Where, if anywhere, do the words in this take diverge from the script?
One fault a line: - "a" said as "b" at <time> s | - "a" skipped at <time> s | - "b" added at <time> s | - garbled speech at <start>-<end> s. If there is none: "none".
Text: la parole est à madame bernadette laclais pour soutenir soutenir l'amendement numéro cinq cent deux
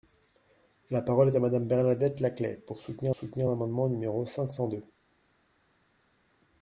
none